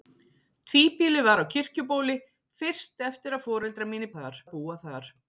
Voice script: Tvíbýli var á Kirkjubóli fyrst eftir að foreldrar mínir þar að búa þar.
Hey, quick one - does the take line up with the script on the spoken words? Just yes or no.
yes